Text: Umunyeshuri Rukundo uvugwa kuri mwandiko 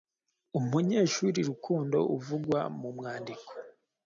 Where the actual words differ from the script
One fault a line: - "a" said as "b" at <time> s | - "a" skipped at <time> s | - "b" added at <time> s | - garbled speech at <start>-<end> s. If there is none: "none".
- "kuri" said as "mu" at 2.8 s